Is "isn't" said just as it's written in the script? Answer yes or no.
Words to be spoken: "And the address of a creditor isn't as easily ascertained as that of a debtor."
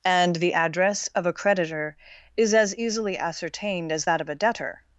no